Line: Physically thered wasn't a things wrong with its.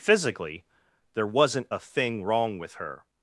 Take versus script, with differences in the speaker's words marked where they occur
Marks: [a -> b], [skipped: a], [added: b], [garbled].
Physically [thered -> there] wasn't a [things -> thing] wrong with [its. -> her]